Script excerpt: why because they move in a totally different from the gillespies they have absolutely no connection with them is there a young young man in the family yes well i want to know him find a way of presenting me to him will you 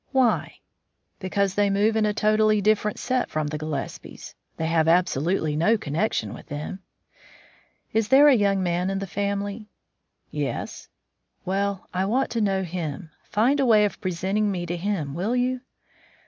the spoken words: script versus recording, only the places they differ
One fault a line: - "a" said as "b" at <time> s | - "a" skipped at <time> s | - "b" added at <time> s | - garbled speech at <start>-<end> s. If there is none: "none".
- "set" added at 3.0 s
- "young" skipped at 8.6 s